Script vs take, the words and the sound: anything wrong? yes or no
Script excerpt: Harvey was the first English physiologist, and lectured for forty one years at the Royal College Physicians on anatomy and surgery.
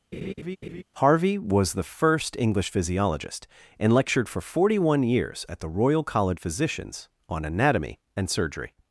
yes